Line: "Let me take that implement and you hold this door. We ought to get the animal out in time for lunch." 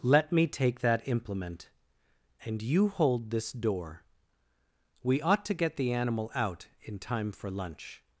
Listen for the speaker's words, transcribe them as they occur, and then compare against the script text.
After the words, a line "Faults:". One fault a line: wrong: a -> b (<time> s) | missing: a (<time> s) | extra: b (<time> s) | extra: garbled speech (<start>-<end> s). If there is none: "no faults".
"Let me take that implement and you hold this door. We ought to get the animal out in time for lunch."
Faults:
no faults